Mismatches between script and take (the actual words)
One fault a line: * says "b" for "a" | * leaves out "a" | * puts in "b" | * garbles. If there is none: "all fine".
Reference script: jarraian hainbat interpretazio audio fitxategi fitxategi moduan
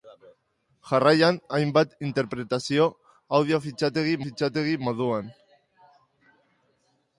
all fine